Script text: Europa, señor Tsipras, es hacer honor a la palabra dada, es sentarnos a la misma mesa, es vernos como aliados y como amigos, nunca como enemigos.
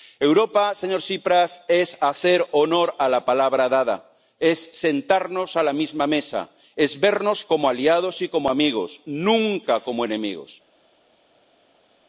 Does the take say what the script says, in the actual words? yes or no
yes